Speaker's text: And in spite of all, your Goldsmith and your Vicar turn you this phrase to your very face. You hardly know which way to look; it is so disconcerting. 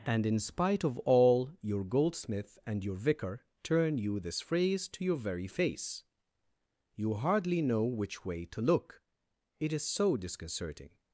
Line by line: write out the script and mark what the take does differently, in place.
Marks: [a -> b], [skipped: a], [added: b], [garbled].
And in spite of all, your Goldsmith and your Vicar turn you this phrase to your very face. You hardly know which way to look; it is so disconcerting.